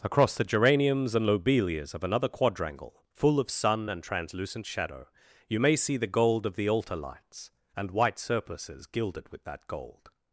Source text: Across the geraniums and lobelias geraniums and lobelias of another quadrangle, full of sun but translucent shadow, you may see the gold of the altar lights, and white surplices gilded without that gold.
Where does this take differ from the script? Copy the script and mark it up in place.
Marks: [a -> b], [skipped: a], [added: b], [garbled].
Across the geraniums and lobelias [skipped: geraniums and lobelias] of another quadrangle, full of sun [but -> and] translucent shadow, you may see the gold of the altar lights, and white surplices gilded [without -> with] that gold.